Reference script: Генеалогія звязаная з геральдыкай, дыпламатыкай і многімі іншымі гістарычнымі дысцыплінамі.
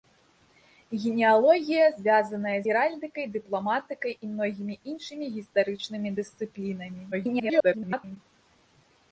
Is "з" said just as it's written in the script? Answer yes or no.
no